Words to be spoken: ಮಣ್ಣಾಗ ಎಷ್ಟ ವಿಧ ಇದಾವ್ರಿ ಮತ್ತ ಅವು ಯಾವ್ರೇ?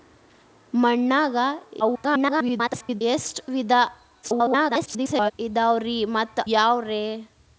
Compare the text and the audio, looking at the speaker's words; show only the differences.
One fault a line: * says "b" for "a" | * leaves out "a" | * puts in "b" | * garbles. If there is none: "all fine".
* garbles
* garbles
* leaves out "ಅವು"